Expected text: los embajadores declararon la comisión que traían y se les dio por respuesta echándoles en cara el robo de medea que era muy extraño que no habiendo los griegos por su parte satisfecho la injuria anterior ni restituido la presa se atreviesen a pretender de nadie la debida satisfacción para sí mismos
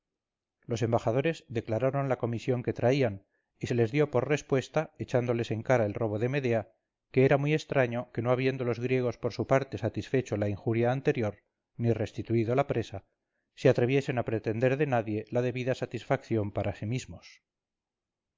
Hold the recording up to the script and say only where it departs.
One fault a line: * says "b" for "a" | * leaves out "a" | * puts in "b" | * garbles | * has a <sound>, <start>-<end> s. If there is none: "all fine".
all fine